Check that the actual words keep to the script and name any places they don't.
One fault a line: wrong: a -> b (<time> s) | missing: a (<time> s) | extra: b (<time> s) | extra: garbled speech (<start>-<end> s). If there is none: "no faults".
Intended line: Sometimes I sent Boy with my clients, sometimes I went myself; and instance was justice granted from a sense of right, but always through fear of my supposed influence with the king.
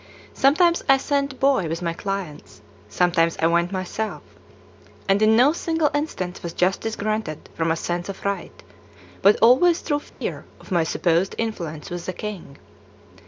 extra: in no single (5.2 s)